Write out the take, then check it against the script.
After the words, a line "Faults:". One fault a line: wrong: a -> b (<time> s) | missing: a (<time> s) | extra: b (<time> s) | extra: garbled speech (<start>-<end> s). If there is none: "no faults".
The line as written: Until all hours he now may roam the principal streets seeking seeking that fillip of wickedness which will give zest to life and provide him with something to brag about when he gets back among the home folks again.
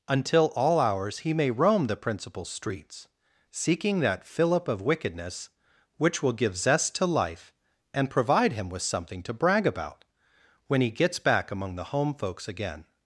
Until all hours he may roam the principal streets seeking that fillip of wickedness which will give zest to life and provide him with something to brag about when he gets back among the home folks again.
Faults:
missing: now (1.3 s)
missing: seeking (4.0 s)